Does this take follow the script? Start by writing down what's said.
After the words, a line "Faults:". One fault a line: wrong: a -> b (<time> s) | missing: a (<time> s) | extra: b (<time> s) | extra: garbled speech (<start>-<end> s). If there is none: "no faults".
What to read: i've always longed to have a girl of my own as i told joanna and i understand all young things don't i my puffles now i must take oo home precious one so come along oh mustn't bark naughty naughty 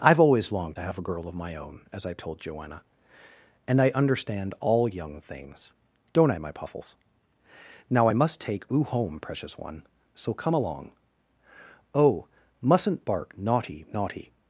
i've always longed to have a girl of my own as i told joanna and i understand all young things don't i my puffles now i must take oo home precious one so come along oh mustn't bark naughty naughty
Faults:
no faults